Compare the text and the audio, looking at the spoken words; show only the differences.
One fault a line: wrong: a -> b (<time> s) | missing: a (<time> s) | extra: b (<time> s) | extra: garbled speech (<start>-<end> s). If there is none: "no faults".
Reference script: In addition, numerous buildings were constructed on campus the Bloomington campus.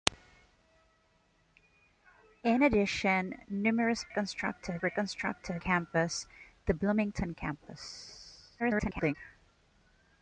wrong: buildings -> constructed (4.1 s)
missing: on (5.6 s)
extra: garbled speech (8.6-9.2 s)